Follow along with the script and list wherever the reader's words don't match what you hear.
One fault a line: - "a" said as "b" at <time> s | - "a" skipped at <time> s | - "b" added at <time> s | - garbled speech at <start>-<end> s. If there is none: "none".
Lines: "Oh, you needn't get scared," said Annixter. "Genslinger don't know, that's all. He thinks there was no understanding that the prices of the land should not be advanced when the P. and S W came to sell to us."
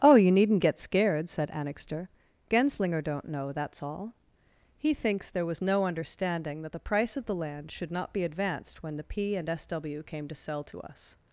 - "prices" said as "price" at 6.8 s